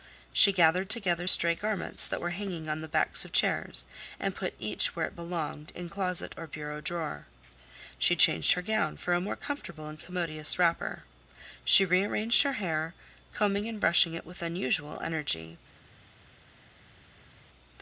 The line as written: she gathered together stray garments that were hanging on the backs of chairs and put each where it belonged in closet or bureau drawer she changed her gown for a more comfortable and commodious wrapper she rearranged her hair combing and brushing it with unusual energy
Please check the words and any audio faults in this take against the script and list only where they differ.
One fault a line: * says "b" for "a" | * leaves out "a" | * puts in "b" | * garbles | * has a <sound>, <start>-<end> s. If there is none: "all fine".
all fine